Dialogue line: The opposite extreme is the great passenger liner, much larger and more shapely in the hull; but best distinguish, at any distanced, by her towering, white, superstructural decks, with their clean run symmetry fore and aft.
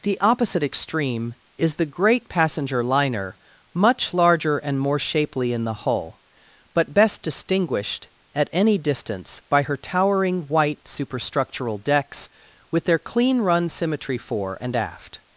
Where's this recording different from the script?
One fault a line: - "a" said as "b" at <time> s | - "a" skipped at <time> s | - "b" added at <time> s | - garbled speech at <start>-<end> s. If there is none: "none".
- "distinguish" said as "distinguished" at 7.2 s
- "distanced" said as "distance" at 8.8 s